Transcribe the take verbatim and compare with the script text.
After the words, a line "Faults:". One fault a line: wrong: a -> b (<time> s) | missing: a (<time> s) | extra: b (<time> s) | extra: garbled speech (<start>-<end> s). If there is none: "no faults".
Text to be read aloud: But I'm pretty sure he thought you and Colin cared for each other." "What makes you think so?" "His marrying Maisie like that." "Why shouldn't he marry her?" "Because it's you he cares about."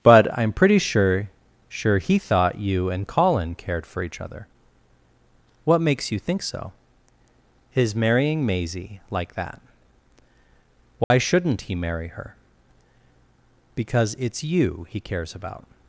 But I'm pretty sure sure he thought you and Colin cared for each other." "What makes you think so?" "His marrying Maisie like that." "Why shouldn't he marry her?" "Because it's you he cares about."
Faults:
extra: sure (1.7 s)